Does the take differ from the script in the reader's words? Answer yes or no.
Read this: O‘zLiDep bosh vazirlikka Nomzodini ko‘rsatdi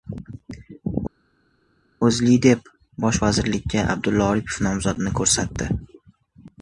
yes